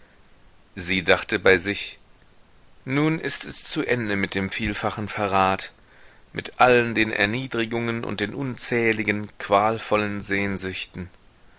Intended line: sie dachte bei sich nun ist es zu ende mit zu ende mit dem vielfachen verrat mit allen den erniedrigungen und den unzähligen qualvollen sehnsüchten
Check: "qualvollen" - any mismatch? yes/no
no